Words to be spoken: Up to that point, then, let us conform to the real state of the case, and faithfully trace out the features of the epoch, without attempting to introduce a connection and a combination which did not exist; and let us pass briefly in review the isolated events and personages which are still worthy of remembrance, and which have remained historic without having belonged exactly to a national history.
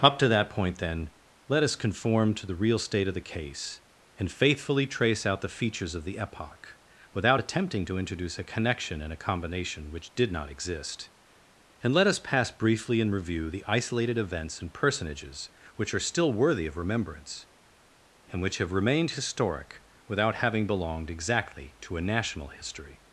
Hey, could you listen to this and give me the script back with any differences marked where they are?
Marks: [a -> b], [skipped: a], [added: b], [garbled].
Up to that point, then, let us conform to the real state of the case, and faithfully trace out the features of the epoch, without attempting to introduce a connection and a combination which did not exist; and let us pass briefly in review the isolated events and personages which are still worthy of remembrance, and which have remained historic without having belonged exactly to a national history.